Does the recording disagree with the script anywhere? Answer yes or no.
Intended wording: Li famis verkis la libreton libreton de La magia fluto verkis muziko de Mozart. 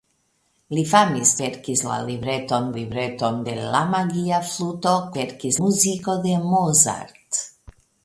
no